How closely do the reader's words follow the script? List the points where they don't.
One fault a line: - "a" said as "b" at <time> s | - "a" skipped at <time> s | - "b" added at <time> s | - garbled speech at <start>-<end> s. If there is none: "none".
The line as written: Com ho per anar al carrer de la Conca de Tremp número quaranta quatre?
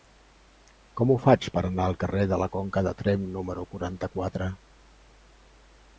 - "faig" added at 1.2 s